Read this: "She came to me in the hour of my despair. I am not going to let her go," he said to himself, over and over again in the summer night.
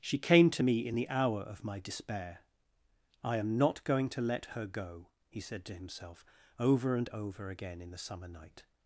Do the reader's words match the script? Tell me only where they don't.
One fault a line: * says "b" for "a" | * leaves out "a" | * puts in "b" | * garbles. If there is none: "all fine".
all fine